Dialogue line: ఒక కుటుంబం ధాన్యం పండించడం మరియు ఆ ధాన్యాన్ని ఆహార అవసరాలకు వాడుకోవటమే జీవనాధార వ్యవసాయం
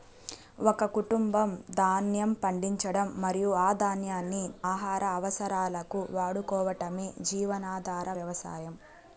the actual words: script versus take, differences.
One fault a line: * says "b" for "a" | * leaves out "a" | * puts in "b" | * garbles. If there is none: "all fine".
all fine